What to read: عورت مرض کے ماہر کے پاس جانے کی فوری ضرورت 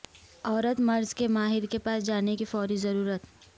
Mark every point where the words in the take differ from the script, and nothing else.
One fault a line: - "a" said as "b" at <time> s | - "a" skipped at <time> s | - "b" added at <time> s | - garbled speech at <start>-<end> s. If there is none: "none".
none